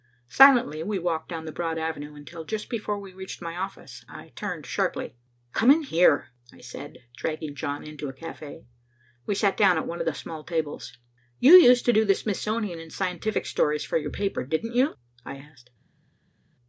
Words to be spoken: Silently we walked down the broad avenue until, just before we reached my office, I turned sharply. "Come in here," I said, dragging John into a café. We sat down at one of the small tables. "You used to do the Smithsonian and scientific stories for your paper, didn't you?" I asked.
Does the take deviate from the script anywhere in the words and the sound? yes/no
no